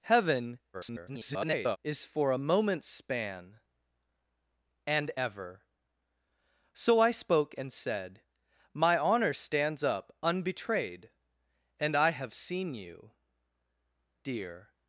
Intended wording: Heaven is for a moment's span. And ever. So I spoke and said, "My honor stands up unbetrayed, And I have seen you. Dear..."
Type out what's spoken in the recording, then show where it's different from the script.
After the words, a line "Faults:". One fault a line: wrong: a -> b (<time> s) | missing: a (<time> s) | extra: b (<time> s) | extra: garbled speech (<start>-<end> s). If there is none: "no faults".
Heaven [garbled] is for a moment's span. And ever. So I spoke and said, "My honor stands up unbetrayed, And I have seen you. Dear..."
Faults:
extra: garbled speech (0.7-1.8 s)